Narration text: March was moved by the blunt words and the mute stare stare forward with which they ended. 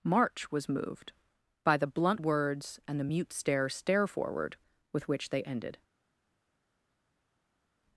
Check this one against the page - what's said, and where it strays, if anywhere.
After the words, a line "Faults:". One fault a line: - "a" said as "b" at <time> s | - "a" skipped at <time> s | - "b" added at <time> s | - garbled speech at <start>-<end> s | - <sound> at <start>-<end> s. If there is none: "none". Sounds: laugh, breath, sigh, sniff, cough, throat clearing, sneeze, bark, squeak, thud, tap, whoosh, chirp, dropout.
March was moved by the blunt words and the mute stare stare forward with which they ended.
Faults:
none